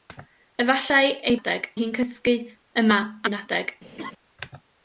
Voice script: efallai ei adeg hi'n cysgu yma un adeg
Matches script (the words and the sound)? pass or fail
fail